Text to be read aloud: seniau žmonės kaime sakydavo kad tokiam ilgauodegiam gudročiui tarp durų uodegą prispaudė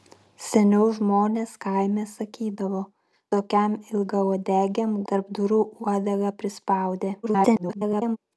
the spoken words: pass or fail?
fail